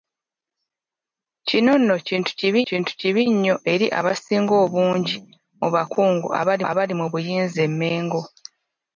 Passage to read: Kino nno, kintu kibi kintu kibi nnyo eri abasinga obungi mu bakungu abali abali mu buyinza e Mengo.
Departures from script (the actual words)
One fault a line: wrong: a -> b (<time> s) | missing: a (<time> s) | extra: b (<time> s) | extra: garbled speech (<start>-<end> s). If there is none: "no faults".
no faults